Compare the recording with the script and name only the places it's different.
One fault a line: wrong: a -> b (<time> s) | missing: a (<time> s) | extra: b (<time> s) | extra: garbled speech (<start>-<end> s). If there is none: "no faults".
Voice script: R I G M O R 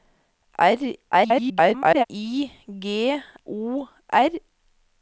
extra: garbled speech (1.1-2.0 s)
missing: M (3.2 s)